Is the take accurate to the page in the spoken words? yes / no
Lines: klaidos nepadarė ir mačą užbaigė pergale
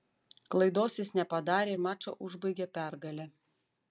no